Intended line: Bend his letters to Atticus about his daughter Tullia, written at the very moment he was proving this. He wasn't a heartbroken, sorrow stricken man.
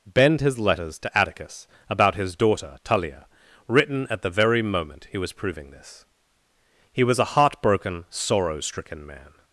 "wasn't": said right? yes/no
no